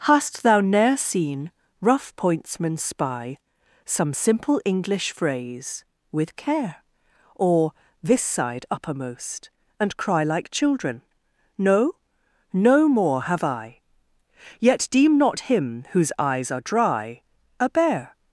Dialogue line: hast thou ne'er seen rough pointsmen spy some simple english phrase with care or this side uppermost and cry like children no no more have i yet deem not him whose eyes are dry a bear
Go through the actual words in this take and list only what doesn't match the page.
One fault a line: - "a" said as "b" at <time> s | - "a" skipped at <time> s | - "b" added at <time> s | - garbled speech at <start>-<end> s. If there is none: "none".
none